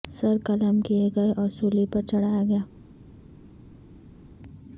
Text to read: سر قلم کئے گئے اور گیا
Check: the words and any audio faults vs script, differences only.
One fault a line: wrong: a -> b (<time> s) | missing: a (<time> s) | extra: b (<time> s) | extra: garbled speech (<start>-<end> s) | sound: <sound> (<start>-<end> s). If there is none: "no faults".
extra: سولی پر چڑھایا (1.5 s)